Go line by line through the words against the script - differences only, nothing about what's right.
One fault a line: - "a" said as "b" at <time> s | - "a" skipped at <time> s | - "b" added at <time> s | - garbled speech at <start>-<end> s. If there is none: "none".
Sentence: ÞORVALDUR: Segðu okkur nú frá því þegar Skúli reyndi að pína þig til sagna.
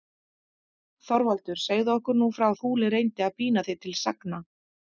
- "því þegar" skipped at 2.5 s